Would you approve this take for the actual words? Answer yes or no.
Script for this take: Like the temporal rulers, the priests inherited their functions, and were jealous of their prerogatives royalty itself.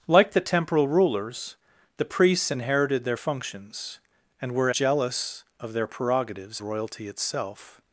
yes